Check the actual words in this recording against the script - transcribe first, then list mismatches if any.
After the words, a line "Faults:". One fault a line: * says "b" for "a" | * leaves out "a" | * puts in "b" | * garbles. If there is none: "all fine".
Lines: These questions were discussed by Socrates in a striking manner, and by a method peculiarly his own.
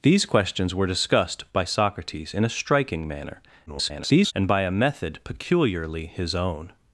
These questions were discussed by Socrates in a striking manner, [garbled] and by a method peculiarly his own.
Faults:
* garbles